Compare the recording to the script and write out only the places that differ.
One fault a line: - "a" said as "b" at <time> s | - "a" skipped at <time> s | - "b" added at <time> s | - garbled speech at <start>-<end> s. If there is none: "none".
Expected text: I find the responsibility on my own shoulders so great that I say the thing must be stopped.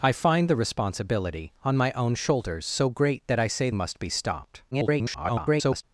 - "the thing" skipped at 3.7 s
- garbled speech at 4.7-5.8 s